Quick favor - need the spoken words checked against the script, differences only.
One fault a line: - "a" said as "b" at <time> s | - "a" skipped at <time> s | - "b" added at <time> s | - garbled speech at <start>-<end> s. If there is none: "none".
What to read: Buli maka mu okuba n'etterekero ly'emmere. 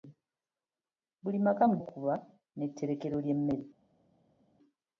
none